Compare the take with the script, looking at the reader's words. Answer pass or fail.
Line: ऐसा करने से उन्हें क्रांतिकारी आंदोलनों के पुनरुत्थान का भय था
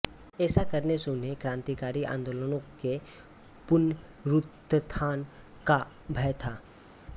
pass